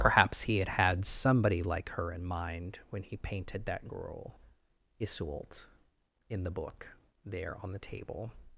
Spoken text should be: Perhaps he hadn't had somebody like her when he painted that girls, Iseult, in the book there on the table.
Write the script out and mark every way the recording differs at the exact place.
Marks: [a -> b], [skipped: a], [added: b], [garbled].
Perhaps he [hadn't -> had] had somebody like her [added: in mind] when he painted that [girls, -> girl] Iseult, in the book there on the table.